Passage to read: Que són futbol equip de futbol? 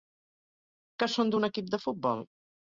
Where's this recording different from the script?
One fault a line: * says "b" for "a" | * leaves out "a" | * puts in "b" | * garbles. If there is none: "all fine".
* says "d'un" for "futbol"